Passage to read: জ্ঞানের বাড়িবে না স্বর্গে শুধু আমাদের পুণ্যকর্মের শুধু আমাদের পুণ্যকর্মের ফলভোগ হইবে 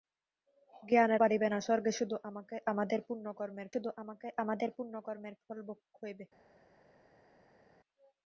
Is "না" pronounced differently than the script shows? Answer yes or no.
no